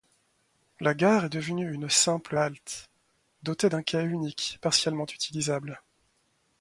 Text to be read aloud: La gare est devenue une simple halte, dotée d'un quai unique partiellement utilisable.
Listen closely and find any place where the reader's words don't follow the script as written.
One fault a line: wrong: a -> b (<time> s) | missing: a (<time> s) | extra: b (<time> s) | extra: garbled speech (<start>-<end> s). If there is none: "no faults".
no faults